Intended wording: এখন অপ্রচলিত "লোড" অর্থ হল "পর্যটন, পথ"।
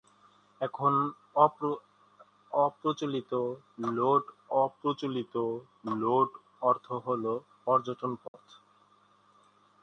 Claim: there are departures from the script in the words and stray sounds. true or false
true